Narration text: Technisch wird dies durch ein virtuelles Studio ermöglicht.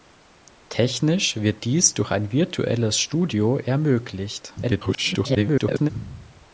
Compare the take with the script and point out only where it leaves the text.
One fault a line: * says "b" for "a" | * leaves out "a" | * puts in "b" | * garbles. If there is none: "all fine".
* garbles